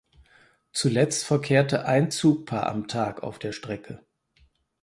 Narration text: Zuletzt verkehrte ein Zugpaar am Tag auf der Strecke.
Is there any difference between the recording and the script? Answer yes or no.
no